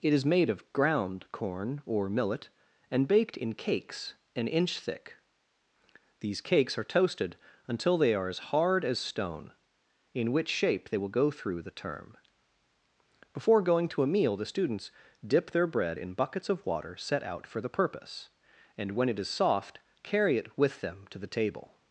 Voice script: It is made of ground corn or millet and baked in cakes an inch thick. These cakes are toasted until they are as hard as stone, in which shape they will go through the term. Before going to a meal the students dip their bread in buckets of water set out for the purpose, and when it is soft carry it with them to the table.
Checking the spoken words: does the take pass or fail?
pass